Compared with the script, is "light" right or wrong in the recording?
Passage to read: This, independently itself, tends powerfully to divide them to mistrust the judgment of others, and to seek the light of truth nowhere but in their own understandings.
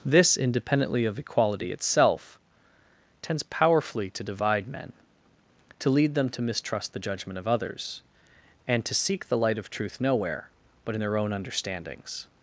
right